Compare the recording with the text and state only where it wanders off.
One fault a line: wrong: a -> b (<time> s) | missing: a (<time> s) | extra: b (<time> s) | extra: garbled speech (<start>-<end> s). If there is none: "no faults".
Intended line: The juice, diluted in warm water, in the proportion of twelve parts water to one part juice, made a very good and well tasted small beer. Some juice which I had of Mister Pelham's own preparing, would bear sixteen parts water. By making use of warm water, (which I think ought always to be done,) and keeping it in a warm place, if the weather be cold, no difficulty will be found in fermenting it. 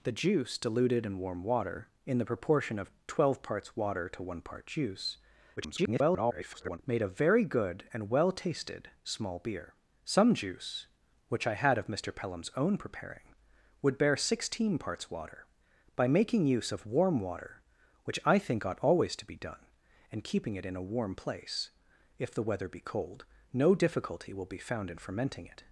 extra: garbled speech (5.6-6.8 s)